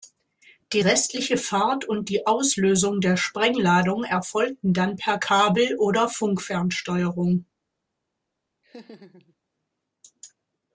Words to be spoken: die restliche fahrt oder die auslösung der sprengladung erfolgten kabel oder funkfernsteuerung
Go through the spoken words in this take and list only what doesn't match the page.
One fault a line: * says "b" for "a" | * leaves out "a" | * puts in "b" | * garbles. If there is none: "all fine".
* says "und" for "oder"
* puts in "dann per"